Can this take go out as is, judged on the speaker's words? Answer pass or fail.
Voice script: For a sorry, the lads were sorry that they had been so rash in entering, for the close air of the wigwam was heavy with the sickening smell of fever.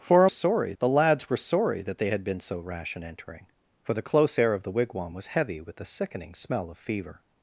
pass